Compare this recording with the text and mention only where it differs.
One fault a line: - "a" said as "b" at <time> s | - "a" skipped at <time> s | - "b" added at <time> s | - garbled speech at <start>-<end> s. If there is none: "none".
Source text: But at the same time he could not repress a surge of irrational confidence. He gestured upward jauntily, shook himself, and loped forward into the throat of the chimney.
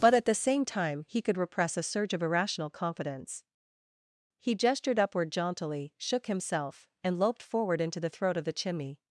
- "not" skipped at 1.4 s